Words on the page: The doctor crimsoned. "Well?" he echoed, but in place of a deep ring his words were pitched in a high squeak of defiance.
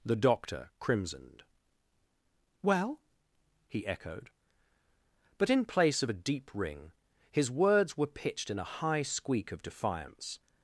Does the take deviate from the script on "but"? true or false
false